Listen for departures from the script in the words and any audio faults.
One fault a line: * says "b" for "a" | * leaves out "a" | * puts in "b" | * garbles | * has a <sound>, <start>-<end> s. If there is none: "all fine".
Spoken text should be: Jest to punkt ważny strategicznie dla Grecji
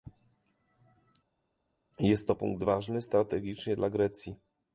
all fine